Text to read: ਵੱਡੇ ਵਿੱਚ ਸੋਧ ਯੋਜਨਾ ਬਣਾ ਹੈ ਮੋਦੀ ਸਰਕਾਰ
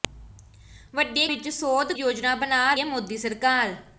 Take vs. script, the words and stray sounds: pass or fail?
pass